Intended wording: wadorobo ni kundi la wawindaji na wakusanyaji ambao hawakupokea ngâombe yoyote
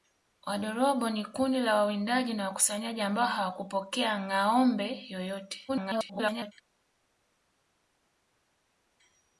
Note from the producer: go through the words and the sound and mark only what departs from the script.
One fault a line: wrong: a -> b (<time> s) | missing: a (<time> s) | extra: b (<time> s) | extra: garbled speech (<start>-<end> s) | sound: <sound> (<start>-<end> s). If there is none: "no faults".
extra: garbled speech (5.7-6.5 s)